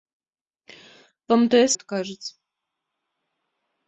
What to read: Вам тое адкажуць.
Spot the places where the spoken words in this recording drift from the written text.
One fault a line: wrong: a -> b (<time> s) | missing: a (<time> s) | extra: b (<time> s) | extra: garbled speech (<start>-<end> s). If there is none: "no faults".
no faults